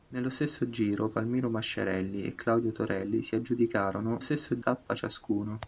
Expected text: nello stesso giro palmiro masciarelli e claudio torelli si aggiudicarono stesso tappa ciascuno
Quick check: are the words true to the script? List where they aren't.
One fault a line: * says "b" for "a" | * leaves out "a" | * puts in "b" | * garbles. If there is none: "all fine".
all fine